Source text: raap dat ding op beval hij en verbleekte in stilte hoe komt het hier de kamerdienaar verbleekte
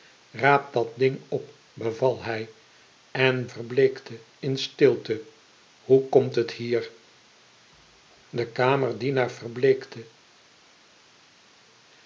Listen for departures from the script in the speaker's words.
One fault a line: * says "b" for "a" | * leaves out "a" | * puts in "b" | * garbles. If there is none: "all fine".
all fine